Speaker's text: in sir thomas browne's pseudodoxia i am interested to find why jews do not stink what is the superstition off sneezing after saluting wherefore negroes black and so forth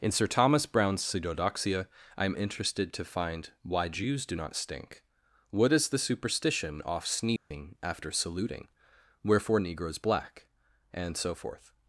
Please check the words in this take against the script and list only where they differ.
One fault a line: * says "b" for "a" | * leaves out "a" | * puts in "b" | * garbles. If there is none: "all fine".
all fine